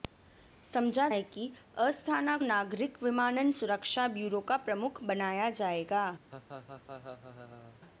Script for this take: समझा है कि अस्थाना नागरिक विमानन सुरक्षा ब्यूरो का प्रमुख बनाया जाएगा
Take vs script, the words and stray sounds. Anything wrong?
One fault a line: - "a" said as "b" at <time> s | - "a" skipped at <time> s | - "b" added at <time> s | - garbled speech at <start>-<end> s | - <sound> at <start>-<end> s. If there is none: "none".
- laugh at 6.3-7.8 s